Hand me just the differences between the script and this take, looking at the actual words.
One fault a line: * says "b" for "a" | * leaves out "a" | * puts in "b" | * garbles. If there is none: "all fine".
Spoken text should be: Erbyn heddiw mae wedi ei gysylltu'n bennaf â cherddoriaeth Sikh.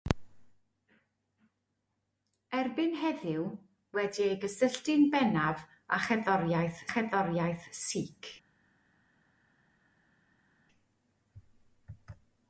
* leaves out "mae"
* puts in "cherddoriaeth"